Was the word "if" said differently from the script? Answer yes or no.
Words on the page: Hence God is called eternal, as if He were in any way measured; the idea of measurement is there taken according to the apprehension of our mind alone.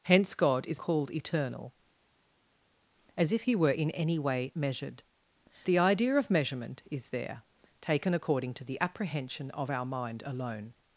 no